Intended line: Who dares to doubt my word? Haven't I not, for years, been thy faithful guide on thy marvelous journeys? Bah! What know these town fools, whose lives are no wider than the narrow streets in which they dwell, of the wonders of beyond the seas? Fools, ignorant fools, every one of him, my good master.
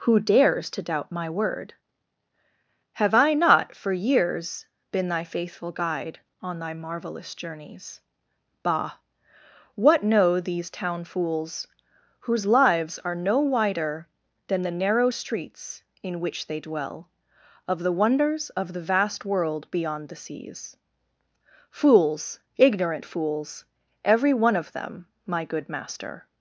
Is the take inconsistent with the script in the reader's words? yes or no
yes